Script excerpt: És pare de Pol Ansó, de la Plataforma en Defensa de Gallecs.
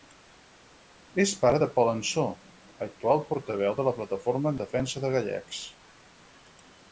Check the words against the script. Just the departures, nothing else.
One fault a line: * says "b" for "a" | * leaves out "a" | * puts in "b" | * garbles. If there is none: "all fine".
* puts in "actual portaveu"